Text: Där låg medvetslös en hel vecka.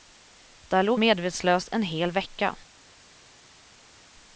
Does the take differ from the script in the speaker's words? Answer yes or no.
no